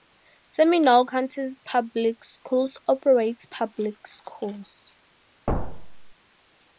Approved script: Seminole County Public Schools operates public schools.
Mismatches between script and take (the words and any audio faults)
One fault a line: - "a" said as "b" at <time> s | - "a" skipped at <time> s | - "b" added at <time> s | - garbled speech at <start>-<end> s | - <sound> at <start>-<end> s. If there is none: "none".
- thud at 5.5-6.1 s